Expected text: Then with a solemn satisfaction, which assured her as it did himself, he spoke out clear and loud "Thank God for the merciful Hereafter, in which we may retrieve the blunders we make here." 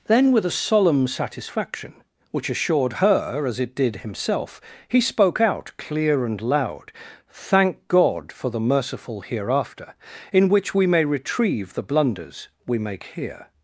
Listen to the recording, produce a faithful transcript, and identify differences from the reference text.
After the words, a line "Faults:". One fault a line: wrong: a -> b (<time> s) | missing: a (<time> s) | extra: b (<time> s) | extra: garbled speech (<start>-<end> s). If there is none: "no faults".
Then with a solemn satisfaction, which assured her as it did himself, he spoke out clear and loud "Thank God for the merciful Hereafter, in which we may retrieve the blunders we make here."
Faults:
no faults